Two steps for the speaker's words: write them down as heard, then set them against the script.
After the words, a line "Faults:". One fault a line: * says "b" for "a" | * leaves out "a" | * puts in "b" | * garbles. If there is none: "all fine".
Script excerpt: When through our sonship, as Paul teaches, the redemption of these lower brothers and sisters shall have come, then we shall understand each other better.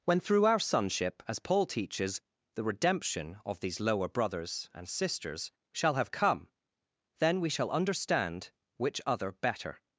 When through our sonship, as Paul teaches, the redemption of these lower brothers and sisters shall have come, then we shall understand which other better.
Faults:
* says "which" for "each"